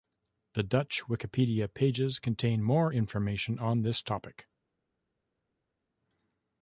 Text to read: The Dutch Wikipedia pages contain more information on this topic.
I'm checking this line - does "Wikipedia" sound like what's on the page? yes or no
yes